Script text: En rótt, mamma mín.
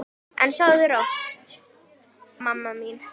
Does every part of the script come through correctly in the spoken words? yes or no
no